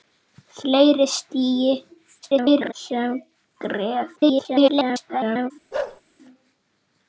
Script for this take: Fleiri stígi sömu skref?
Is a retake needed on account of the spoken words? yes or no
yes